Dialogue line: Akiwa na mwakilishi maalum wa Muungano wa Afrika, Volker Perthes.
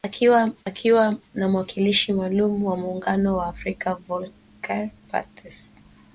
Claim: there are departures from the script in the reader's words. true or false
true